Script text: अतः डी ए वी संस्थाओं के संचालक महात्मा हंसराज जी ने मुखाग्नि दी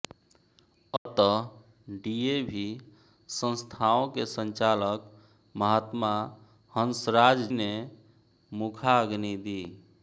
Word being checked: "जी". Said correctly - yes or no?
no